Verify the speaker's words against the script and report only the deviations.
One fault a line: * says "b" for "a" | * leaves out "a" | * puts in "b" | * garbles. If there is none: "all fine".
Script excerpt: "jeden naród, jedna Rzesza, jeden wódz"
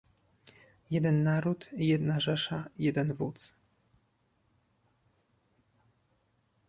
all fine